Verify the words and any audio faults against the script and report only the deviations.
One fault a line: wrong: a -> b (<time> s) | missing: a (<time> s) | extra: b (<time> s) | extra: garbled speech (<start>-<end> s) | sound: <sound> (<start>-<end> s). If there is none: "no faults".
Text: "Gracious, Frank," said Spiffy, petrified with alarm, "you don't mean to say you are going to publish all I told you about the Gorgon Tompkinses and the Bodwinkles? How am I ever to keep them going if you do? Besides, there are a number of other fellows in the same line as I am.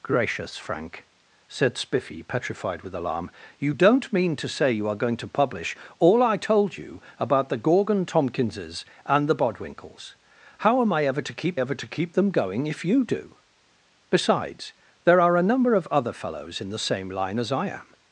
extra: ever to keep (11.6 s)